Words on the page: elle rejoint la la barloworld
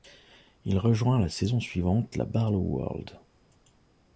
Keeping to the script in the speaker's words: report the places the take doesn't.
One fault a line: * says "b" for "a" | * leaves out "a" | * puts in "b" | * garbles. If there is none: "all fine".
* says "il" for "elle"
* puts in "saison suivante"